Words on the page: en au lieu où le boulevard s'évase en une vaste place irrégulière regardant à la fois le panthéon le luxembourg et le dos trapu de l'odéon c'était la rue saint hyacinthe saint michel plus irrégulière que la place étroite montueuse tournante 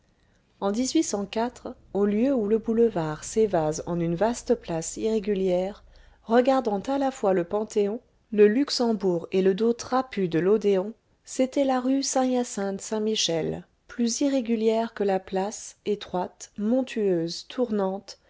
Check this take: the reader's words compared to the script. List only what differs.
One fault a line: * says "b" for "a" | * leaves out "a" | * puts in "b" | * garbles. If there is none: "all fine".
all fine